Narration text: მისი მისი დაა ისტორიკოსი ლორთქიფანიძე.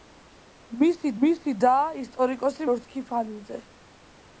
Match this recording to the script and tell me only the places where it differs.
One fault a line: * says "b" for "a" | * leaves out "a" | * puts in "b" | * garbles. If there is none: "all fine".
all fine